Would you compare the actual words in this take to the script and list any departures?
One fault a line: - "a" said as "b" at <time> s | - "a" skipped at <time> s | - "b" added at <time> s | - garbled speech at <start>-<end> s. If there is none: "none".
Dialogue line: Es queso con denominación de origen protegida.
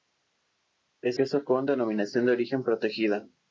none